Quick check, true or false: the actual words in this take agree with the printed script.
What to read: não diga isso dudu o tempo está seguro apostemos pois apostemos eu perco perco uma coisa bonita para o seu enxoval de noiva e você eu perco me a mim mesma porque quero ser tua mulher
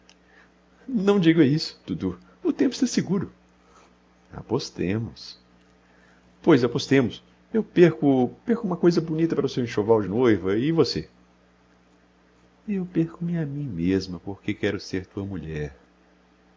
true